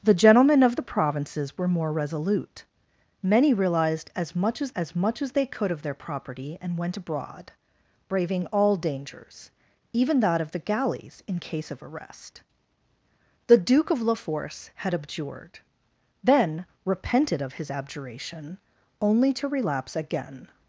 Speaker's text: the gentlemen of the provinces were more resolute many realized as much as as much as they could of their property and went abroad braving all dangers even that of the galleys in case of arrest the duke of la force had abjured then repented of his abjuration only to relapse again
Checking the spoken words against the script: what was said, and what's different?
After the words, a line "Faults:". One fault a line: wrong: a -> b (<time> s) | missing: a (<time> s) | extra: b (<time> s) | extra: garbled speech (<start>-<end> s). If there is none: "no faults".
the gentlemen of the provinces were more resolute many realized as much as as much as they could of their property and went abroad braving all dangers even that of the galleys in case of arrest the duke of la force had abjured then repented of his abjuration only to relapse again
Faults:
no faults